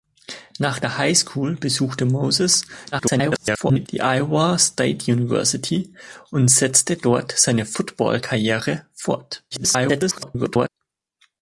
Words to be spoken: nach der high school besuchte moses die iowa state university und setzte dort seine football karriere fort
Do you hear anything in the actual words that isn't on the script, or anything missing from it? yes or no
yes